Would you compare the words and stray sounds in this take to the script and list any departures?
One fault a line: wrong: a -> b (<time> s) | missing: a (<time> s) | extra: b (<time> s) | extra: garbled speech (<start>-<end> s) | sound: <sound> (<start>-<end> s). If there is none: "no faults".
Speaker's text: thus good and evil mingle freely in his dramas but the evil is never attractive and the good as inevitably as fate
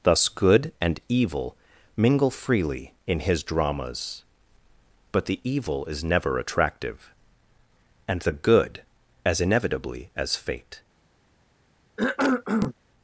sound: cough (12.0-12.7 s)